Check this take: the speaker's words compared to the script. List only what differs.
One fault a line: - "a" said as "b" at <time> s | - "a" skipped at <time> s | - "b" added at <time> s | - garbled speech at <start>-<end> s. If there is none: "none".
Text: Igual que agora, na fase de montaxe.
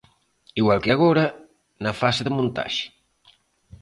none